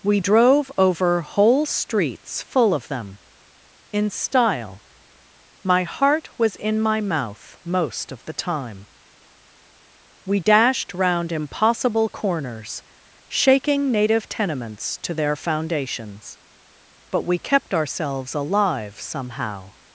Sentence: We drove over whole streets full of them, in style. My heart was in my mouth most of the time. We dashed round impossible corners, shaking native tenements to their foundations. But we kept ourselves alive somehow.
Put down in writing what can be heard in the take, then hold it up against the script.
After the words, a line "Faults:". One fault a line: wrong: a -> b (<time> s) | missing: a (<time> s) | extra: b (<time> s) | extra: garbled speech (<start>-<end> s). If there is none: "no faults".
We drove over whole streets full of them, in style. My heart was in my mouth most of the time. We dashed round impossible corners, shaking native tenements to their foundations. But we kept ourselves alive somehow.
Faults:
no faults